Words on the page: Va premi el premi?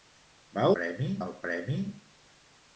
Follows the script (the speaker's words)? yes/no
yes